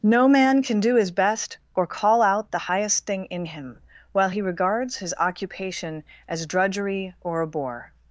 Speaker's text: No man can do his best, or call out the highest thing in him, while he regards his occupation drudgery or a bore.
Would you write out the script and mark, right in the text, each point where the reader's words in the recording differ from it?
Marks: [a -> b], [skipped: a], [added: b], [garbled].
No man can do his best, or call out the highest thing in him, while he regards his occupation [added: as] drudgery or a bore.